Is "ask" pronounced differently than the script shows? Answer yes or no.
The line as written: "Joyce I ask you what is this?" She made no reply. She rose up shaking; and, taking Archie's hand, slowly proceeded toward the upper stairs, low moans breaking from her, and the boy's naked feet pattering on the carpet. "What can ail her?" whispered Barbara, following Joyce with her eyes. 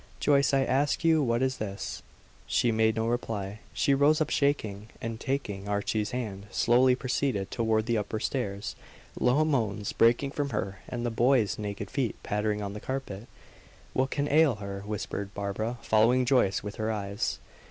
no